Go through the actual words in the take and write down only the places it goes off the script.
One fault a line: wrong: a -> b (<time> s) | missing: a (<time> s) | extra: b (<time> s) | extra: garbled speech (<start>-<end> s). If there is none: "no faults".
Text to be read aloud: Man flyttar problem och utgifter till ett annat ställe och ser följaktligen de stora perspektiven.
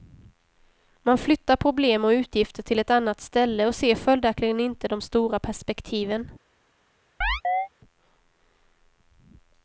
extra: inte (4.6 s)